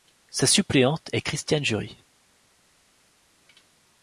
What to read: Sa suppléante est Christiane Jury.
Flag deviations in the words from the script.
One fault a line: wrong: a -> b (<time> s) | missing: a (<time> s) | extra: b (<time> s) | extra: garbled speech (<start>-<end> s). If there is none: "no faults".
no faults